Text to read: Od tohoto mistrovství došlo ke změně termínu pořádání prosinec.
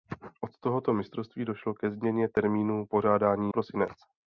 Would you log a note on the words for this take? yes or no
no